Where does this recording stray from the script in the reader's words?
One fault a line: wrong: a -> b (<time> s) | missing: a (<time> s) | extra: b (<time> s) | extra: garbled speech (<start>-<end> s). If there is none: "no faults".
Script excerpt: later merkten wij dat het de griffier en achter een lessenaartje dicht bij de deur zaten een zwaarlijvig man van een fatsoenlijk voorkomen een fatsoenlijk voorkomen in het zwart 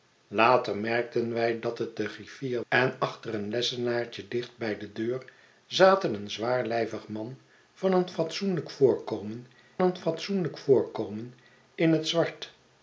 no faults